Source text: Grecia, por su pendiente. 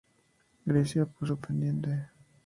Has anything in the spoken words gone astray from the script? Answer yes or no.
no